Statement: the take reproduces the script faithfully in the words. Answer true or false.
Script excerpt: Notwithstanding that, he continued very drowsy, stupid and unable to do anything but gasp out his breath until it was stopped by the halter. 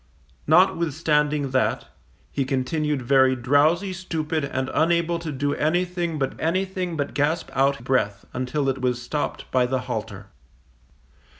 false